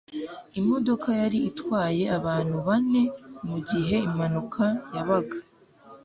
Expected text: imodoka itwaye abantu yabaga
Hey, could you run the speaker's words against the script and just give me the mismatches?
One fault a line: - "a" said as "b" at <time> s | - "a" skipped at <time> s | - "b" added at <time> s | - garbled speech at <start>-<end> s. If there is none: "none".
- "yari" added at 1.2 s
- "bane mugihe impanuka" added at 2.7 s